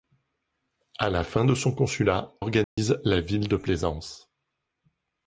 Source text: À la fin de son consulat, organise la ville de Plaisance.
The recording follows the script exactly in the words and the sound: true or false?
false